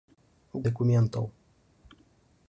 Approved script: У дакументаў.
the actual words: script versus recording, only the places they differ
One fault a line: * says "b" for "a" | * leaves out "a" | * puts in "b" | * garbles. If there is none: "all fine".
all fine